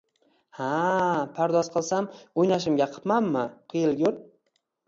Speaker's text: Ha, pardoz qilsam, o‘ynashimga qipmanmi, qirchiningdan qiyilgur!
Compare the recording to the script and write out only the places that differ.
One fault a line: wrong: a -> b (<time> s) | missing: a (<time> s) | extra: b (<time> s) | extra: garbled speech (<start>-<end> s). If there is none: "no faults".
missing: qirchiningdan (3.5 s)